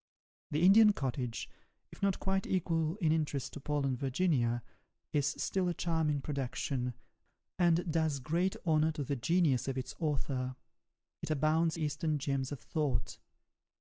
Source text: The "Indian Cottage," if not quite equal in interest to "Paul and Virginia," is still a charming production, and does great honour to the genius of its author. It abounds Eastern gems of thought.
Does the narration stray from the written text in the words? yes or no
no